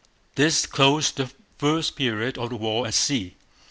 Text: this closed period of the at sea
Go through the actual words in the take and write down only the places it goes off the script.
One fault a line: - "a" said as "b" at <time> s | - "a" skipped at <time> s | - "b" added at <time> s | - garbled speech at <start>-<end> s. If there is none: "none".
- "the first" added at 1.2 s
- "war" added at 2.5 s